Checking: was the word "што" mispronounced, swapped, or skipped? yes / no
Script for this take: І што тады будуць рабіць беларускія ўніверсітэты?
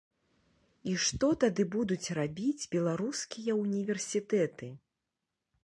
no